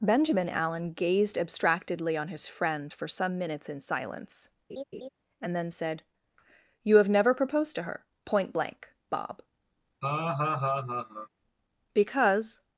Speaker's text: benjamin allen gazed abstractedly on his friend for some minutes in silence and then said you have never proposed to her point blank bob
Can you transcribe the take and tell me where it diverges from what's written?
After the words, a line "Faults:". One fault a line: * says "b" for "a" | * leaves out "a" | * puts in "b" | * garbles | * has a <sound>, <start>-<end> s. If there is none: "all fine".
benjamin allen gazed abstractedly on his friend for some minutes in silence and then said you have never proposed to her point blank bob because
Faults:
* has a laugh, 4.7-5.1 s
* has a laugh, 10.0-11.3 s
* puts in "because"